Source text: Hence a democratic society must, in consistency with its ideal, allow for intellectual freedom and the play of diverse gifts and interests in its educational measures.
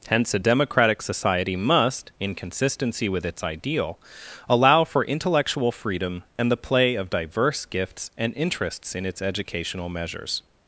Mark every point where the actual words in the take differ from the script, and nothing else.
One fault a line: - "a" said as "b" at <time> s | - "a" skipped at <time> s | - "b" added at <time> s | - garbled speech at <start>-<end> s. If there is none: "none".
none